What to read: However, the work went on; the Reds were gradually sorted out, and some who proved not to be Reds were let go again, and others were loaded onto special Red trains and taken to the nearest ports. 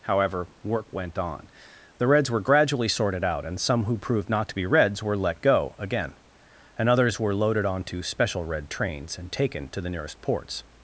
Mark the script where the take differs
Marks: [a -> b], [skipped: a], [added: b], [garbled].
However, [skipped: the] work went on; the Reds were gradually sorted out, and some who proved not to be Reds were let go again, and others were loaded onto special Red trains and taken to the nearest ports.